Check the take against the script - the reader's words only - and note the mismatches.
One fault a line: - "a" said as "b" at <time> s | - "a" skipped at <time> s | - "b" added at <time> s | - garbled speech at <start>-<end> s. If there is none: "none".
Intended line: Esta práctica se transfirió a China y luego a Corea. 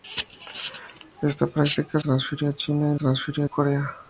- "se" skipped at 2.0 s
- "luego" said as "transfirió" at 2.9 s